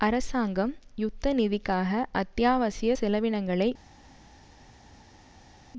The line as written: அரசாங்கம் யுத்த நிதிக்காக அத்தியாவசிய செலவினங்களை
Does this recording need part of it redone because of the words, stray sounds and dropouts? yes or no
no